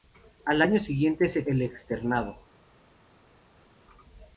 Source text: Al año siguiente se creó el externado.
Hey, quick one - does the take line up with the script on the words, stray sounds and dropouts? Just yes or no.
no